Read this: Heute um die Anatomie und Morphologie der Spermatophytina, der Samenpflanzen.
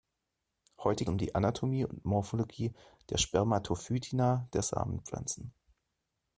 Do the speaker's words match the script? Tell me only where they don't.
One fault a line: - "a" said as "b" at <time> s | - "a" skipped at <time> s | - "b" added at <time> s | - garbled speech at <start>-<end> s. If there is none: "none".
none